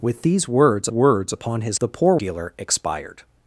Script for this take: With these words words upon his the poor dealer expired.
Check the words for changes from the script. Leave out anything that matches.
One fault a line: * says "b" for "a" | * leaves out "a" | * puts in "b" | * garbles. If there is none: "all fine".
all fine